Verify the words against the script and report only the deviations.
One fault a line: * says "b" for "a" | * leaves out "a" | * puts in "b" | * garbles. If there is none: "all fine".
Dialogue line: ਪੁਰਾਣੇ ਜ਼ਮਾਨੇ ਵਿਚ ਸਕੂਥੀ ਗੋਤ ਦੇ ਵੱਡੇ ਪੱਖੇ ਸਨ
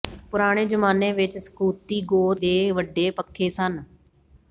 all fine